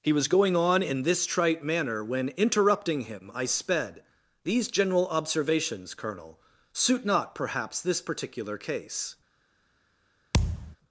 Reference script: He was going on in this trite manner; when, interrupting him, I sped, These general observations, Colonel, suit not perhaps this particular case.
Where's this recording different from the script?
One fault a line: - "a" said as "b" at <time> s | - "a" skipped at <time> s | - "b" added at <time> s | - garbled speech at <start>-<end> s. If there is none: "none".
none